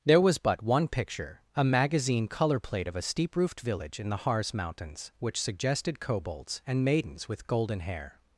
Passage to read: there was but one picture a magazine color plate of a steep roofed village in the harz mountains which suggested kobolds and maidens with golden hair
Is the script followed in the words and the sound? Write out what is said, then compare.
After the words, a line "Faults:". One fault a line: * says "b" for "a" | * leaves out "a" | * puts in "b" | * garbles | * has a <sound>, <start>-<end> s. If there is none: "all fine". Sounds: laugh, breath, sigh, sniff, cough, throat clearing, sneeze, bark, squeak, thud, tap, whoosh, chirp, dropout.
there was but one picture a magazine color plate of a steep roofed village in the harz mountains which suggested kobolds and maidens with golden hair
Faults:
all fine